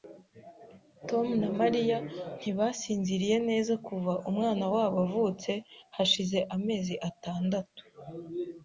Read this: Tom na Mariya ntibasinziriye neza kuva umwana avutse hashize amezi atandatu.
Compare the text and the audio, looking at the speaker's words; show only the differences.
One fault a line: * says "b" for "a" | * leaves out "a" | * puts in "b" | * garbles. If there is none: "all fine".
* puts in "wabo"